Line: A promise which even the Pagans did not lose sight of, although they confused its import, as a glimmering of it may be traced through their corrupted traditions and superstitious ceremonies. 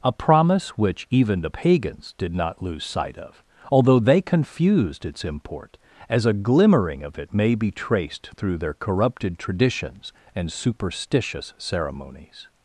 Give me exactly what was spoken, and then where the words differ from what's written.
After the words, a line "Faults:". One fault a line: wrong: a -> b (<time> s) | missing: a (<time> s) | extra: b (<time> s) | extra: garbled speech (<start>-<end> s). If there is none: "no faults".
A promise which even the Pagans did not lose sight of, although they confused its import, as a glimmering of it may be traced through their corrupted traditions and superstitious ceremonies.
Faults:
no faults